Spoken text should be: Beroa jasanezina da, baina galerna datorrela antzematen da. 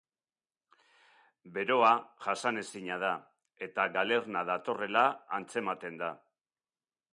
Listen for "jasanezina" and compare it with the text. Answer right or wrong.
right